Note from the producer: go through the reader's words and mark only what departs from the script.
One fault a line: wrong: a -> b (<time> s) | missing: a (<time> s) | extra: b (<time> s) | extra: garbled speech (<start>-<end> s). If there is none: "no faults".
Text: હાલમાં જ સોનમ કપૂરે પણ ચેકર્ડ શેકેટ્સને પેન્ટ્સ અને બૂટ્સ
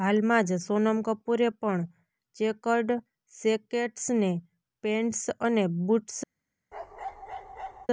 no faults